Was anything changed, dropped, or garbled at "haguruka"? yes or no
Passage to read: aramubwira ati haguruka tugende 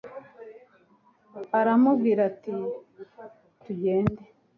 yes